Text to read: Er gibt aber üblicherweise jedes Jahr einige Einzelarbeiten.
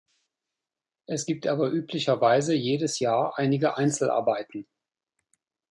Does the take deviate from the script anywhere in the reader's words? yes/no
yes